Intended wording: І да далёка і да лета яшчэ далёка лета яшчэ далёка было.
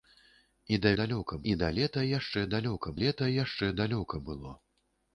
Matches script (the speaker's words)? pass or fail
pass